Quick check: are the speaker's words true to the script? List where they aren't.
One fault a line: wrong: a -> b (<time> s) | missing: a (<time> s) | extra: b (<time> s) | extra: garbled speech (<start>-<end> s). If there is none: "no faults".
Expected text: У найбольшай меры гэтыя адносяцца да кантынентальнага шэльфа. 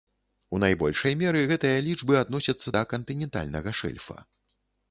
extra: лічбы (1.9 s)